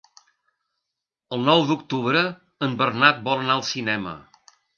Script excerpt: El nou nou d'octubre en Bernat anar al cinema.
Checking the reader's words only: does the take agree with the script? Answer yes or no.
no